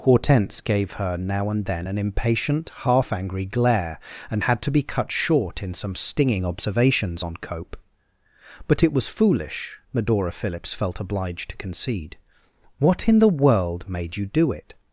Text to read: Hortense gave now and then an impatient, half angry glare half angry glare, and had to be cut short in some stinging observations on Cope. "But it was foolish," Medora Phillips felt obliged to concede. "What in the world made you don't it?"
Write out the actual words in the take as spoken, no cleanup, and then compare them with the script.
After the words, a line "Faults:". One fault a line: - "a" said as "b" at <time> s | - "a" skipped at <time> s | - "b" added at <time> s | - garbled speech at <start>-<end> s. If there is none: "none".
Hortense gave her now and then an impatient, half angry glare, and had to be cut short in some stinging observations on Cope. "But it was foolish," Medora Phillips felt obliged to concede. "What in the world made you do it?"
Faults:
- "her" added at 0.9 s
- "half angry glare" skipped at 4.0 s
- "don't" said as "do" at 14.3 s